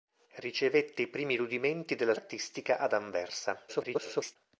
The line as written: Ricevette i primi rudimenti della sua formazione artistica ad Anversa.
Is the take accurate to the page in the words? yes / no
no